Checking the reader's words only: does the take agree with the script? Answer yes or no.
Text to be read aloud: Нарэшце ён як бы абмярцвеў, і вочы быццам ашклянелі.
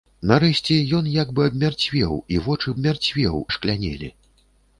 no